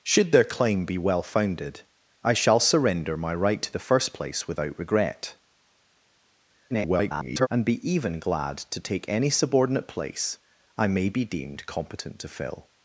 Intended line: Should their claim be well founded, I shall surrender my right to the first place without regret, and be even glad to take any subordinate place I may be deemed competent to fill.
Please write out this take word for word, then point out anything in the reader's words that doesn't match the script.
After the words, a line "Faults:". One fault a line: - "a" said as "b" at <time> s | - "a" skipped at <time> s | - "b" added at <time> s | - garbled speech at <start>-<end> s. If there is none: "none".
Should their claim be well founded, I shall surrender my right to the first place without regret, [garbled] and be even glad to take any subordinate place I may be deemed competent to fill.
Faults:
- garbled speech at 6.7-7.5 s